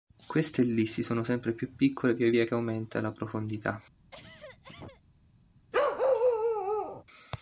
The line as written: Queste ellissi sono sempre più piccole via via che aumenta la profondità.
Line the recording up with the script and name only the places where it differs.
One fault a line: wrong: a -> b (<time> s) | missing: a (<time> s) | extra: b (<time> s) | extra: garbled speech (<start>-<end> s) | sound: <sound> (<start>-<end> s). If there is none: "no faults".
sound: cough (4.1-5.0 s)
sound: bark (5.7-7.0 s)